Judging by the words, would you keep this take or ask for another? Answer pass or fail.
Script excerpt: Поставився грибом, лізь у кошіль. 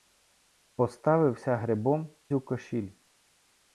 fail